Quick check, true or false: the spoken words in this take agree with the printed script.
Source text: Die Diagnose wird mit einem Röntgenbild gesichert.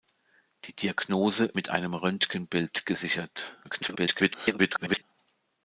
false